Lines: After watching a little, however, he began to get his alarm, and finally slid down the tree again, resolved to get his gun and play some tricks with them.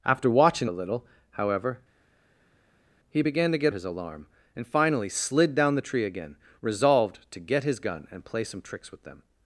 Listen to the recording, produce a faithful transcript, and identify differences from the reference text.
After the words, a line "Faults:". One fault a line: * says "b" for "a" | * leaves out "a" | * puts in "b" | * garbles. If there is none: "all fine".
After watching a little, however, he began to get his alarm, and finally slid down the tree again, resolved to get his gun and play some tricks with them.
Faults:
all fine